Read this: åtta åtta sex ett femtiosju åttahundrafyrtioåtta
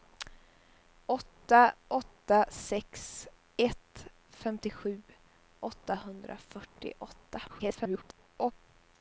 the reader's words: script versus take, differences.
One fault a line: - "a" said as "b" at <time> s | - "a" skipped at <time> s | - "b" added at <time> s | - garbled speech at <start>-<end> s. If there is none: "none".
- garbled speech at 7.5-8.5 s